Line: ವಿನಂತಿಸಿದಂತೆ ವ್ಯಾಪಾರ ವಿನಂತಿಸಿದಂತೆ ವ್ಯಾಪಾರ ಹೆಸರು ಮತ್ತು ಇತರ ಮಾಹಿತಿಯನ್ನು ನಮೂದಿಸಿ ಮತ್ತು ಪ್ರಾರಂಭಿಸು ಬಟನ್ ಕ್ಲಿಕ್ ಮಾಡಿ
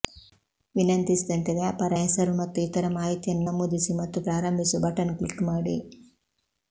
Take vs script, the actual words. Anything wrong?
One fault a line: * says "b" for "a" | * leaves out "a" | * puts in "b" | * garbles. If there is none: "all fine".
* leaves out "ವಿನಂತಿಸಿದಂತೆ ವ್ಯಾಪಾರ"